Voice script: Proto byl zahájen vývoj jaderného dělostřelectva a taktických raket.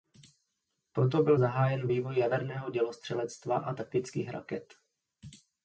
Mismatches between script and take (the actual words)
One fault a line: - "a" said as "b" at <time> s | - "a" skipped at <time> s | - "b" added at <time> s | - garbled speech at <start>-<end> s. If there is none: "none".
none